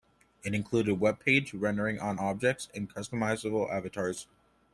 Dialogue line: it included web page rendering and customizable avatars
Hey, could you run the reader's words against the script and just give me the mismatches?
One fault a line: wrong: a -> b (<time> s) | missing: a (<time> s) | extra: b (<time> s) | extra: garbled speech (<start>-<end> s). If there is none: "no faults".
extra: on objects (2.0 s)